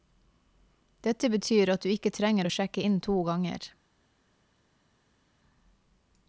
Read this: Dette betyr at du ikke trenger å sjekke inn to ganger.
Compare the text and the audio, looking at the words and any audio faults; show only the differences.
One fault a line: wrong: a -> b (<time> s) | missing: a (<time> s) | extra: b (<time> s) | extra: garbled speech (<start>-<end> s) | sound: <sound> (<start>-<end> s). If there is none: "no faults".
no faults